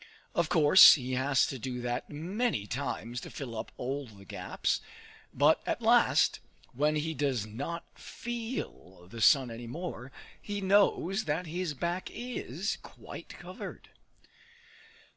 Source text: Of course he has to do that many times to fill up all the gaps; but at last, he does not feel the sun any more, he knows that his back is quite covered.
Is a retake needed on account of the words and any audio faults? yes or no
yes